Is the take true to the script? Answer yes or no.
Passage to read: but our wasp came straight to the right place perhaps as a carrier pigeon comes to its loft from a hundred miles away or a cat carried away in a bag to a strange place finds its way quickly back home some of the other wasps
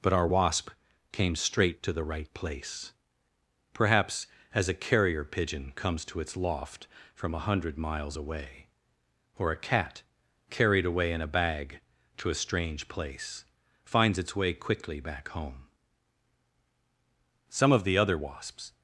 yes